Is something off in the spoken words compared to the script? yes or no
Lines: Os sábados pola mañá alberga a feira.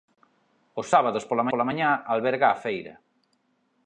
yes